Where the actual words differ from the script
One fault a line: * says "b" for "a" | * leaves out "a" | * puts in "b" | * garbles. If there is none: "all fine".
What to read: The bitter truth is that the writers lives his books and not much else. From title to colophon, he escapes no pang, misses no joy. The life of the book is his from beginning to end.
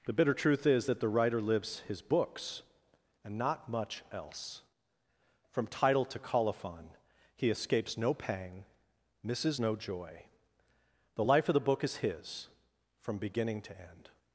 * says "writer" for "writers"